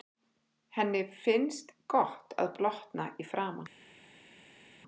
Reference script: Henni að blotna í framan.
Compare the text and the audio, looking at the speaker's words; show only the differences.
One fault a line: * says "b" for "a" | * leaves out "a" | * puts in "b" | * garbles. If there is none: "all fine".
* puts in "finnst gott"